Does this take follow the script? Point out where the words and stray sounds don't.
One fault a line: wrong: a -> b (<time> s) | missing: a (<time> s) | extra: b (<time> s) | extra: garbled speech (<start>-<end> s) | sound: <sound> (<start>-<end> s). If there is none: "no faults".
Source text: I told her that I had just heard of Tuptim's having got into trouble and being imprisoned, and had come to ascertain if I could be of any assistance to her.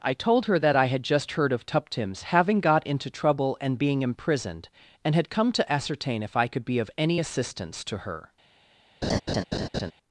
sound: laugh (9.0-9.9 s)